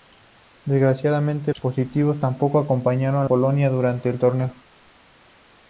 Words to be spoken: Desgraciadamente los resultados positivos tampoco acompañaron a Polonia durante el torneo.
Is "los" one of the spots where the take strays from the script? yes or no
yes